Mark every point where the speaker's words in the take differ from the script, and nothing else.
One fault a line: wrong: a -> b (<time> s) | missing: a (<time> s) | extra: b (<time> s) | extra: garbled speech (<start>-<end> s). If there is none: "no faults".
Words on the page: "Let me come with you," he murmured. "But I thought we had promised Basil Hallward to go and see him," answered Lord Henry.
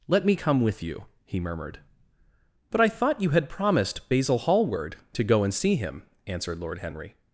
wrong: we -> you (3.2 s)